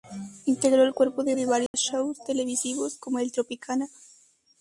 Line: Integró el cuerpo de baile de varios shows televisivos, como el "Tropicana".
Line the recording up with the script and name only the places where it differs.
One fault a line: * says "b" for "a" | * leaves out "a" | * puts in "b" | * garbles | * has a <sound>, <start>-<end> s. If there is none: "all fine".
* leaves out "baile"
* has a dropout, 1.7-1.7 s